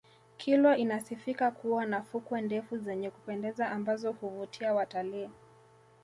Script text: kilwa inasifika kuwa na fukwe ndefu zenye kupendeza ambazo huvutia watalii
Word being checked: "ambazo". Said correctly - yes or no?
yes